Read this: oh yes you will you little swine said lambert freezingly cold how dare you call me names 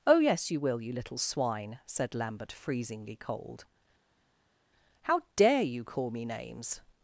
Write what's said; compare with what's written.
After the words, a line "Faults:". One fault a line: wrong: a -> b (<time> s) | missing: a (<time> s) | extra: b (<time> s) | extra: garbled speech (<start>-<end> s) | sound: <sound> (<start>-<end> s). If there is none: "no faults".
oh yes you will you little swine said lambert freezingly cold how dare you call me names
Faults:
no faults